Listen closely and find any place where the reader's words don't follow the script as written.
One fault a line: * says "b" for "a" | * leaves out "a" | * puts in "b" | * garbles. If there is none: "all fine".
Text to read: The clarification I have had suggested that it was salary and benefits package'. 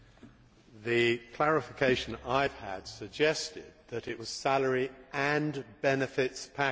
all fine